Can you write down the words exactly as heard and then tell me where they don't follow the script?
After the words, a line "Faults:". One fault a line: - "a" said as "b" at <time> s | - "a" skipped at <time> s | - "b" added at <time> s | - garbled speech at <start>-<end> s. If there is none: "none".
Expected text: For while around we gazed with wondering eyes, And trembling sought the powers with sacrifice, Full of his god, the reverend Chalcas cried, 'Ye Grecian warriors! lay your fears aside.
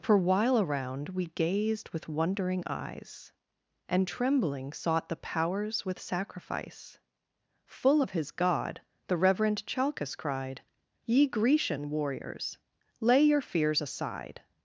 For while around we gazed with wondering eyes, And trembling sought the powers with sacrifice, Full of his god, the reverend Chalcas cried, 'Ye Grecian warriors! lay your fears aside.
Faults:
none